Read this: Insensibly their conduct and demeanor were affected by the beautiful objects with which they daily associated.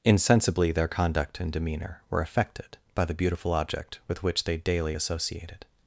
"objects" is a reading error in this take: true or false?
true